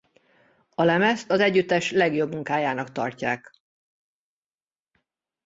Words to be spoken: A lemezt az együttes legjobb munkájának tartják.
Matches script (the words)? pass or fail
pass